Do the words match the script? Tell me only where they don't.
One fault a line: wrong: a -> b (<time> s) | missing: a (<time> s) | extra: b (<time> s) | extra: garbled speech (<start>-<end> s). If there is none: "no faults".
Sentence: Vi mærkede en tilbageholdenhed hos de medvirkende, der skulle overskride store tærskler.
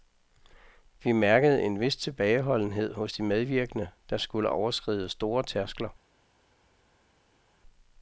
extra: vis (1.8 s)